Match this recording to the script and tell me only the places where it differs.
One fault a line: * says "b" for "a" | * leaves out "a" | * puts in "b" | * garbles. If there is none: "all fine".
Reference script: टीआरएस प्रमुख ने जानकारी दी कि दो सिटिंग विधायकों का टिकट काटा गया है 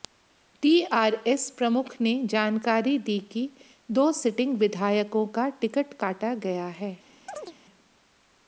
all fine